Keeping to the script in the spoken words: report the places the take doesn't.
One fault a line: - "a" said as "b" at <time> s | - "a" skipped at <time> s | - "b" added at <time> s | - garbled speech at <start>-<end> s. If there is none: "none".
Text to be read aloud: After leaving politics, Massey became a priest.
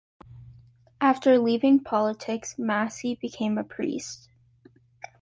none